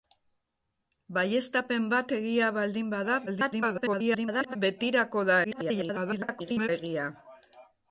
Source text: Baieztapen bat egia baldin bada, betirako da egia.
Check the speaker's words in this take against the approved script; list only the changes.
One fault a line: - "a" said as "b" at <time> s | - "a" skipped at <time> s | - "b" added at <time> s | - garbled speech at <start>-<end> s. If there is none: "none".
- garbled speech at 3.3-4.6 s
- garbled speech at 5.4-6.7 s